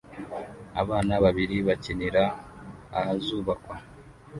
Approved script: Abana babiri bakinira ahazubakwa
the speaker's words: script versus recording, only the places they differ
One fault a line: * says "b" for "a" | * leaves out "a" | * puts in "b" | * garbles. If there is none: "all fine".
all fine